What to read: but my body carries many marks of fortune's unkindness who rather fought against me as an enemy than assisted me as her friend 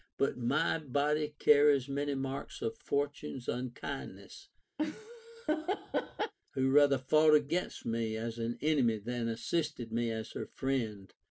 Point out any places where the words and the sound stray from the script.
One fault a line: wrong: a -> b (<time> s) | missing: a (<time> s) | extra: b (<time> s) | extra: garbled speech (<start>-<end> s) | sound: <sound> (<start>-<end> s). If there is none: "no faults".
sound: laugh (4.8-6.3 s)